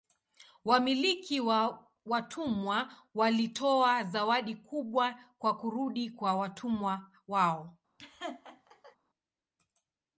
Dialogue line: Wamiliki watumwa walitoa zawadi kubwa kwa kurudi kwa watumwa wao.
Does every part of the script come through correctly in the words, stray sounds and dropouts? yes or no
no